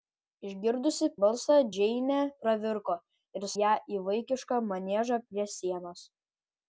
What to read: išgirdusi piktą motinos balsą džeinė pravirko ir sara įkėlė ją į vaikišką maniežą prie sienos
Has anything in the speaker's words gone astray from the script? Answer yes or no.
yes